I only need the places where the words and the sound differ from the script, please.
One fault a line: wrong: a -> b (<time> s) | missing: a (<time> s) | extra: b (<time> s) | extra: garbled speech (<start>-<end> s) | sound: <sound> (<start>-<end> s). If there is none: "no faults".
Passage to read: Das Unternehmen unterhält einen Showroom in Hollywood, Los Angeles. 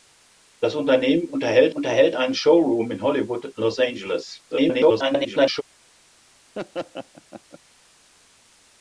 extra: unterhält (1.7 s)
extra: garbled speech (4.5-5.6 s)
sound: laugh (6.6-7.6 s)